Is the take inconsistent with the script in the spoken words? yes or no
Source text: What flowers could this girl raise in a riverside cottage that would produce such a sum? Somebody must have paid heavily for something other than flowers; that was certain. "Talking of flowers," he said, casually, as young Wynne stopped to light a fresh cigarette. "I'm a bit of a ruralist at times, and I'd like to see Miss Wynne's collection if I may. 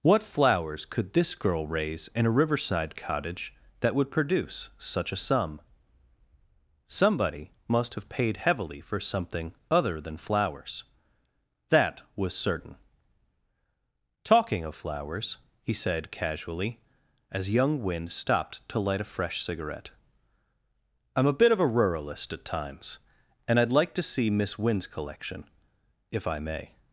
no